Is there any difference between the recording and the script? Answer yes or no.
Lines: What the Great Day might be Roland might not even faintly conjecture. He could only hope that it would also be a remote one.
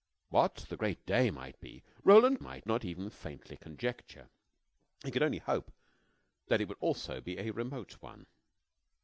no